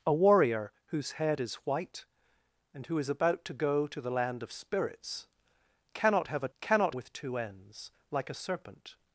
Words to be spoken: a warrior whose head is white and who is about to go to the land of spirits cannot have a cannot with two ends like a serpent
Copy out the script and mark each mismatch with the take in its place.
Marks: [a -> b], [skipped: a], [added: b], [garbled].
a warrior whose head is white and who is about to go to the land of spirits cannot have a cannot with two ends like a serpent